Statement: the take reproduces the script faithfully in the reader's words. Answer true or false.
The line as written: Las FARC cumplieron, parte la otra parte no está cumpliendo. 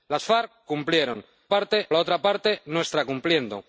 true